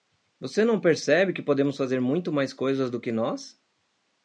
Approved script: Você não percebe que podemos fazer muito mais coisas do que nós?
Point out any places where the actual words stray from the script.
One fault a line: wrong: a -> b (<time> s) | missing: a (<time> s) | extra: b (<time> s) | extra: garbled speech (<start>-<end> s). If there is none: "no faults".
no faults